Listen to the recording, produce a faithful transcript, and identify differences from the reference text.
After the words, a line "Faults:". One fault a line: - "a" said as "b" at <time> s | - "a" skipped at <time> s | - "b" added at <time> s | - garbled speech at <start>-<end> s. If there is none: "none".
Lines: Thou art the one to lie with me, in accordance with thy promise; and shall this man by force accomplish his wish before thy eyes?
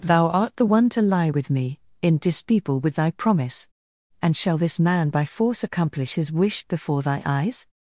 Thou art the one to lie with me, in dispeople with thy promise; and shall this man by force accomplish his wish before thy eyes?
Faults:
- "accordance" said as "dispeople" at 2.2 s